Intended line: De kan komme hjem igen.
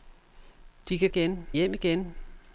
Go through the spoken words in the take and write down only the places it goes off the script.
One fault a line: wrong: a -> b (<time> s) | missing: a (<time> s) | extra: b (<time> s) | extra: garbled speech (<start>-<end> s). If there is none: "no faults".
wrong: komme -> igen (1.0 s)